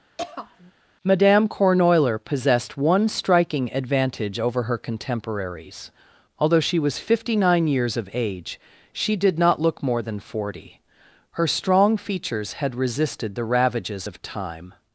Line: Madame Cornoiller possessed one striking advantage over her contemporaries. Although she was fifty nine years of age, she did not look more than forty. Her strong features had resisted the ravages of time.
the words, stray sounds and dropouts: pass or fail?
fail